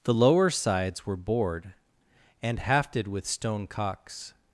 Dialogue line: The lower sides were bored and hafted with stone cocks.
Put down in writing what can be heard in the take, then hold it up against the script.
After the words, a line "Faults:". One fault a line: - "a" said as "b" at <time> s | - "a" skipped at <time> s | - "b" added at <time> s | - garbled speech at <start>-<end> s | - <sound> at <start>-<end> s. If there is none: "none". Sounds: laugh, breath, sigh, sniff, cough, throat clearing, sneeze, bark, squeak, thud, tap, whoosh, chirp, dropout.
The lower sides were bored and hafted with stone cocks.
Faults:
none